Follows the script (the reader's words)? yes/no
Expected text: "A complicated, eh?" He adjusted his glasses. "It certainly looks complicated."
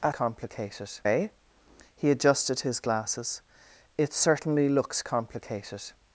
yes